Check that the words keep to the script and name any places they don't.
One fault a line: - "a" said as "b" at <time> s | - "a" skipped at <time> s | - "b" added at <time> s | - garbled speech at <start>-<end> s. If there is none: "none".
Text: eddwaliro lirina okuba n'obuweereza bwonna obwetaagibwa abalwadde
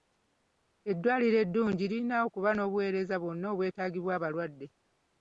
- "eddungi" added at 1.4 s